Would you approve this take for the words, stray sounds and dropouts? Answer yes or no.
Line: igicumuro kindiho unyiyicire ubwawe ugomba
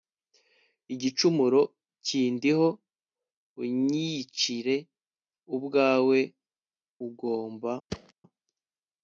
no